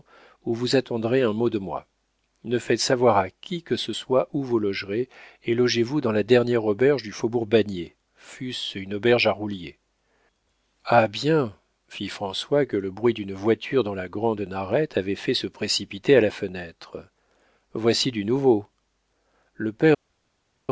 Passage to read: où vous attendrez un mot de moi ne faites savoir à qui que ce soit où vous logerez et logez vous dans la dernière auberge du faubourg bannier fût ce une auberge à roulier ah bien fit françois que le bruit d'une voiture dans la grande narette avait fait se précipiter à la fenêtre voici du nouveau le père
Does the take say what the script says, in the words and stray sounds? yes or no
yes